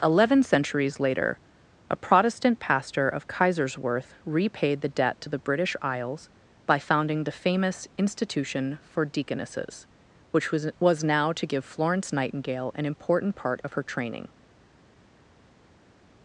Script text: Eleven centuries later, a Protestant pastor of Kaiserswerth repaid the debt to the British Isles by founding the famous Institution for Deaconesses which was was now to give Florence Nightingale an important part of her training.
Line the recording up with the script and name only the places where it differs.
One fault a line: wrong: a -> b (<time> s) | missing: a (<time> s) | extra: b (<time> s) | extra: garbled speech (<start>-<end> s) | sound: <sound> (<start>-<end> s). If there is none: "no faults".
no faults